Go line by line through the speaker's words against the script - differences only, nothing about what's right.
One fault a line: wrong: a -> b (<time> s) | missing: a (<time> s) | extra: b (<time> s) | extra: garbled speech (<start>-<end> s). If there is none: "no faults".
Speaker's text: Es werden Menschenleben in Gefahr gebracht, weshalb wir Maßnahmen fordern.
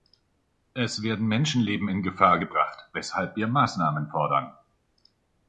no faults